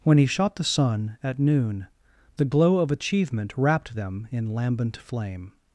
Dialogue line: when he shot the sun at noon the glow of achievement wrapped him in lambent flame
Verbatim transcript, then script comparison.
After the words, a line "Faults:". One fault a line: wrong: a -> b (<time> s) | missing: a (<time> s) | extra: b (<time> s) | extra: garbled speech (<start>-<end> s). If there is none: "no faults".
when he shot the sun at noon the glow of achievement wrapped them in lambent flame
Faults:
wrong: him -> them (3.9 s)